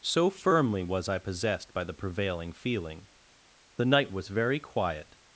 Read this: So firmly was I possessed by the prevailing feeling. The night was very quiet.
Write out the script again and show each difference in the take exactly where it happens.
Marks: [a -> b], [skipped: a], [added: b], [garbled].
So firmly was I possessed by the prevailing feeling. The night was very quiet.